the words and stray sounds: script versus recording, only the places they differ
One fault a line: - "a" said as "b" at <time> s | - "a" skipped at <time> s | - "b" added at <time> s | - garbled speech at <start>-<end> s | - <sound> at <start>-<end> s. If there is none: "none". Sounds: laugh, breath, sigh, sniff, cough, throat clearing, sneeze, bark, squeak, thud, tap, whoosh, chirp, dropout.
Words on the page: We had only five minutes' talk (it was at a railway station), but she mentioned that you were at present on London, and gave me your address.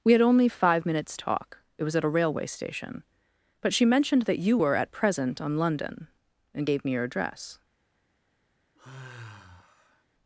- sigh at 8.8-10.0 s